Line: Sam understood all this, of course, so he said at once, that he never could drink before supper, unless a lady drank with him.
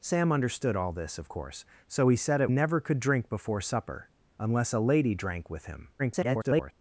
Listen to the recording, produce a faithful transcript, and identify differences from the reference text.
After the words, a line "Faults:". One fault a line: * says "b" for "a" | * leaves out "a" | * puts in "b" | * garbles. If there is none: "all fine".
Sam understood all this, of course, so he said at never could drink before supper, unless a lady drank with him. [garbled]
Faults:
* leaves out "once that he"
* garbles